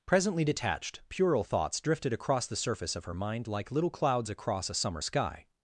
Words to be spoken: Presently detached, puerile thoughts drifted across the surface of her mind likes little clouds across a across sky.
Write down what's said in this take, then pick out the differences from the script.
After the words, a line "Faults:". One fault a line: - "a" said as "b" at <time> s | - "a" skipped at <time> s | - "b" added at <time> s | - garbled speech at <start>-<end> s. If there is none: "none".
Presently detached, puerile thoughts drifted across the surface of her mind like little clouds across a summer sky.
Faults:
- "likes" said as "like" at 3.5 s
- "across" said as "summer" at 4.7 s